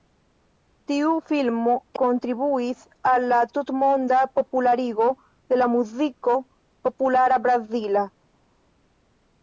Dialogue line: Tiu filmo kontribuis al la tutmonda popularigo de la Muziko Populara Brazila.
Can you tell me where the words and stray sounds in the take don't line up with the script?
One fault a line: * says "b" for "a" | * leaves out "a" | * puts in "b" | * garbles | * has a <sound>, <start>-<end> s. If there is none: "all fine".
all fine